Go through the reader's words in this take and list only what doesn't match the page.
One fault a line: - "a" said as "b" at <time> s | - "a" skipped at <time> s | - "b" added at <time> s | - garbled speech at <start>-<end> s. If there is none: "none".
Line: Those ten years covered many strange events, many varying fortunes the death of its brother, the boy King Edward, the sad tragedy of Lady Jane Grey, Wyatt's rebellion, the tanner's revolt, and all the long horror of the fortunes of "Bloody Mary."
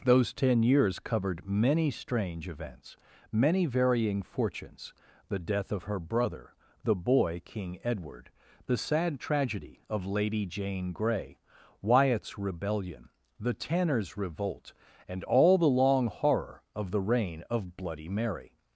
- "its" said as "her" at 5.8 s
- "fortunes" said as "reign" at 17.0 s